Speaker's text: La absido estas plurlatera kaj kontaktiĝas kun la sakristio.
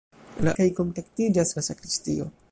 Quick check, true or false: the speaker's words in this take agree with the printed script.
false